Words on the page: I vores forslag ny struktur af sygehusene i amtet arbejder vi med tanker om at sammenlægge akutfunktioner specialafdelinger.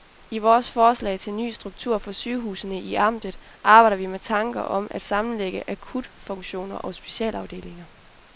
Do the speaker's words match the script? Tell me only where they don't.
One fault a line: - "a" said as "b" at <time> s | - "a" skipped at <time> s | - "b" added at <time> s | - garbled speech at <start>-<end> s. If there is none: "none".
- "til" added at 1.2 s
- "af" said as "for" at 2.0 s
- "og" added at 6.8 s